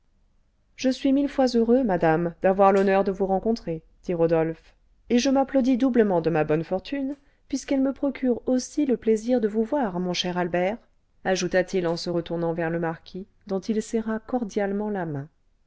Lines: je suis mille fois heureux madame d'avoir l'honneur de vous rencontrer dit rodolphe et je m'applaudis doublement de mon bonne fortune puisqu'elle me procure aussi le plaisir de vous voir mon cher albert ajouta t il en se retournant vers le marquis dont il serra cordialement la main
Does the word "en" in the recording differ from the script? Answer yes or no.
no